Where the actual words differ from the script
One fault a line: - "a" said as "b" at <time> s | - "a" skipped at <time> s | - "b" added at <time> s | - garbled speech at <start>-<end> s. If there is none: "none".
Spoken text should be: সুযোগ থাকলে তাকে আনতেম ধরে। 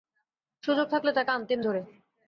none